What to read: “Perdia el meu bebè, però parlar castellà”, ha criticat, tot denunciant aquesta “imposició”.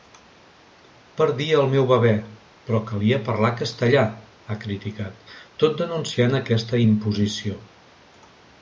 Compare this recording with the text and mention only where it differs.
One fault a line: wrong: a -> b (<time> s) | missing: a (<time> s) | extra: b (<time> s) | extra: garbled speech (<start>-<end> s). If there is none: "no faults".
extra: calia (2.9 s)